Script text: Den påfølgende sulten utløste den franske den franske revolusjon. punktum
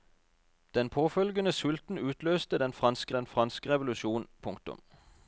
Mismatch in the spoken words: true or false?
false